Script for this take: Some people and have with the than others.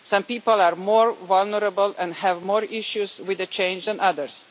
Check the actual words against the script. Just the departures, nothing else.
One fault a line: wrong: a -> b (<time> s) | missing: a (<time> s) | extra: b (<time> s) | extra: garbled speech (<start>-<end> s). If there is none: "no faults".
extra: are more vulnerable (0.6 s)
extra: more issues (2.4 s)
extra: change (3.5 s)